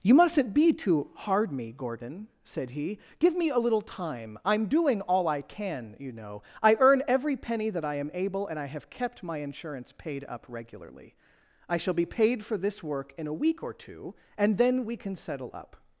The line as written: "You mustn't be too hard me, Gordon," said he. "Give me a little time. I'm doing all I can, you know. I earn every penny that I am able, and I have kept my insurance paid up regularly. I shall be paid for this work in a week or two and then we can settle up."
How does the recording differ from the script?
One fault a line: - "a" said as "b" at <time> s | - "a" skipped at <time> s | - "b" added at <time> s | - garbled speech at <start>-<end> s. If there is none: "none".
none